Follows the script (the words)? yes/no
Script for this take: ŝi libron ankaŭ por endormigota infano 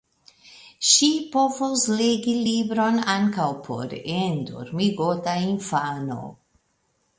no